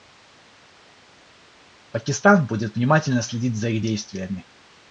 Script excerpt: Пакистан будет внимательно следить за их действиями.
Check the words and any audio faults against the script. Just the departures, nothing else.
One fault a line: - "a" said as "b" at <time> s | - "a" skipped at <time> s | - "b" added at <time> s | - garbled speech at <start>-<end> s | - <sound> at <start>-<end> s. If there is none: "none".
none